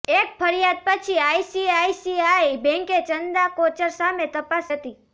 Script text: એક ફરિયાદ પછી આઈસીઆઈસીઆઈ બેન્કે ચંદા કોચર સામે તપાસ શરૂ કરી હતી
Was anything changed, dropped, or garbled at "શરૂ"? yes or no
yes